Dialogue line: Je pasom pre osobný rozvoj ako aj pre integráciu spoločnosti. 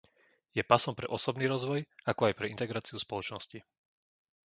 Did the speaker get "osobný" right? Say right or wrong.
right